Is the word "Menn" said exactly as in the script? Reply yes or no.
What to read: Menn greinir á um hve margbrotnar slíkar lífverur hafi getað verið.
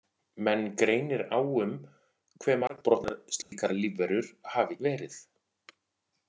yes